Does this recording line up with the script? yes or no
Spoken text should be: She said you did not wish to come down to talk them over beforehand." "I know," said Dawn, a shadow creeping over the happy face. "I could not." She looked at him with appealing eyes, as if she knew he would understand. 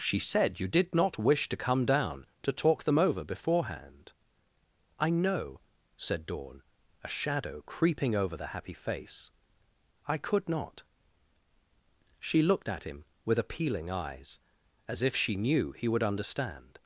yes